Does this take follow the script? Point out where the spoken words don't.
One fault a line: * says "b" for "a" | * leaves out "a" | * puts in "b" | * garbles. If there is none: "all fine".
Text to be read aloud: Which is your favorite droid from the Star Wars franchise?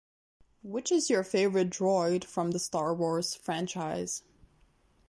all fine